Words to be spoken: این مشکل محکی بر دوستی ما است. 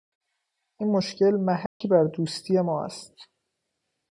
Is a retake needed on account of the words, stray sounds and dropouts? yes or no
yes